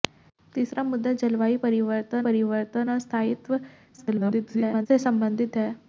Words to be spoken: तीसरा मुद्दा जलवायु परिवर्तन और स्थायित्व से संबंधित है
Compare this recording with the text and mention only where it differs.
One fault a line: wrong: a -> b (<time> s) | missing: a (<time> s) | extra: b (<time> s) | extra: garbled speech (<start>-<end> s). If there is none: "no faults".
extra: परिवर्तन (2.3 s)
extra: garbled speech (4.0-4.9 s)